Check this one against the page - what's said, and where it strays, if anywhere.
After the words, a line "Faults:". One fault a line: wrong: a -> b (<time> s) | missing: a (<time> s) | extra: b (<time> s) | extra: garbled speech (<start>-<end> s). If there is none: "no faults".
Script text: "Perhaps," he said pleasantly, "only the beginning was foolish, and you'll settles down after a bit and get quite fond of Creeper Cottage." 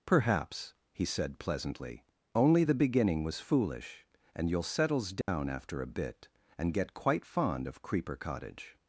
"Perhaps," he said pleasantly, "only the beginning was foolish, and you'll settles down after a bit and get quite fond of Creeper Cottage."
Faults:
no faults